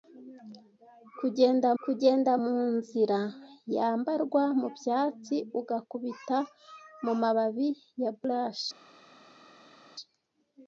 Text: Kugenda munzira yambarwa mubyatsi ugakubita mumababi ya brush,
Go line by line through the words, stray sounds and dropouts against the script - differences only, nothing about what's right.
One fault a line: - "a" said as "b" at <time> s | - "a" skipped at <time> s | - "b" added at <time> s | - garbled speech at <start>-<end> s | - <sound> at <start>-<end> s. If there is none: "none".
- "kugenda" added at 1.8 s